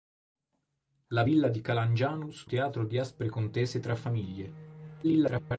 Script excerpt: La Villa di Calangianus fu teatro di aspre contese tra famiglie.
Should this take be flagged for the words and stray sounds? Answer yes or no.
yes